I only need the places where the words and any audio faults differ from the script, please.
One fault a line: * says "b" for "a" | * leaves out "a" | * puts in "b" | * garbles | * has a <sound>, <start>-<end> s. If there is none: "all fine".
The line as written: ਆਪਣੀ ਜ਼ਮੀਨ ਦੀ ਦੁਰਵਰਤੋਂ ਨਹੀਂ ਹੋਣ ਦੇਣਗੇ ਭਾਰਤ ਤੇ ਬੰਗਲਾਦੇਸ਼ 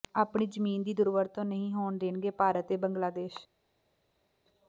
all fine